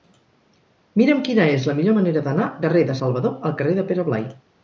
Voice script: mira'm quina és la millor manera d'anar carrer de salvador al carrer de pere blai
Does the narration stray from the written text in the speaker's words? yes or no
no